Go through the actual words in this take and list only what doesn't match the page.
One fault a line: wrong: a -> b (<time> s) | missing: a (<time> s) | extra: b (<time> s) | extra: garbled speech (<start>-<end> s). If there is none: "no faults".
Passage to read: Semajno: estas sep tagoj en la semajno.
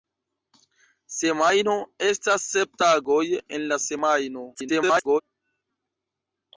extra: garbled speech (4.5-5.2 s)